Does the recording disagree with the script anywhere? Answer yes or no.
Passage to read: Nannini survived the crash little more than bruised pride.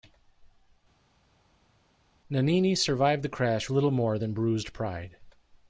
no